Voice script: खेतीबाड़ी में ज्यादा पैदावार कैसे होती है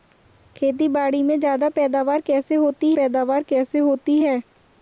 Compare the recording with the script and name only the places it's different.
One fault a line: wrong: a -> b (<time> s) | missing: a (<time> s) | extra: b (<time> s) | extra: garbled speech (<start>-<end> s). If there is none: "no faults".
extra: पैदावार कैसे होती (2.9 s)